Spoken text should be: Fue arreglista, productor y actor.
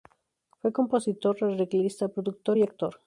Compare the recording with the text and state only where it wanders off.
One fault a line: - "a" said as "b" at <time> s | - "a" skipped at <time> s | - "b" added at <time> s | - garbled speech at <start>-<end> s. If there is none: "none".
- "compositor" added at 0.7 s